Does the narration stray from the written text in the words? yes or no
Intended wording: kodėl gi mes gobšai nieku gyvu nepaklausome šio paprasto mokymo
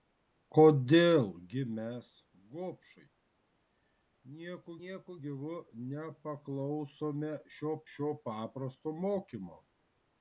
yes